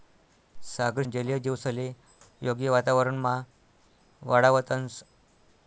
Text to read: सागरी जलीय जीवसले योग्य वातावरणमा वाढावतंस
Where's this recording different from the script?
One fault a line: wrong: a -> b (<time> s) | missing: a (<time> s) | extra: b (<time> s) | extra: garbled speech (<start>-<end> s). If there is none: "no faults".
no faults